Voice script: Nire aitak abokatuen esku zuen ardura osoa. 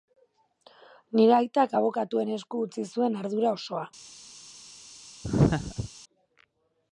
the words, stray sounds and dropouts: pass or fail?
fail